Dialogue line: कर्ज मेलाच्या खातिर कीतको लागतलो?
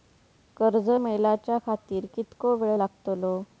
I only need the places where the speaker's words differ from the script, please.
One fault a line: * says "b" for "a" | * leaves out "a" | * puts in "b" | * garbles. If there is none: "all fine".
* puts in "वेळ"